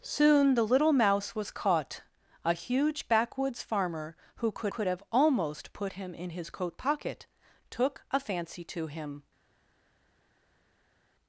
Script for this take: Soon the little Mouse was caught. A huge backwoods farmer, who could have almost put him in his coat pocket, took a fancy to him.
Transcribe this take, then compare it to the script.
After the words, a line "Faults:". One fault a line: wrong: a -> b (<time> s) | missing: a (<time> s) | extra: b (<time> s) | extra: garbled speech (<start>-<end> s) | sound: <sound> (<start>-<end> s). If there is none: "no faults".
Soon the little Mouse was caught. A huge backwoods farmer, who could could have almost put him in his coat pocket, took a fancy to him.
Faults:
extra: could (4.7 s)